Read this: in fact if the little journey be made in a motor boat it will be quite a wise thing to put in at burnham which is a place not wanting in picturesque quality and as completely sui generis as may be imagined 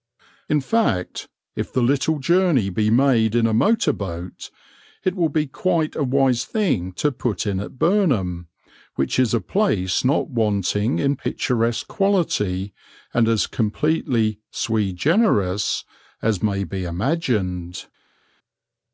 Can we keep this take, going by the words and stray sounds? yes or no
yes